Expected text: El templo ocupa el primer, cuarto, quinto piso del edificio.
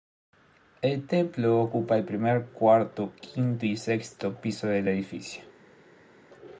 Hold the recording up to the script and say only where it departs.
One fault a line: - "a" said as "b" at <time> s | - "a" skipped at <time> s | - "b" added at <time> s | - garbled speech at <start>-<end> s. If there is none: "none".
- "y sexto" added at 3.7 s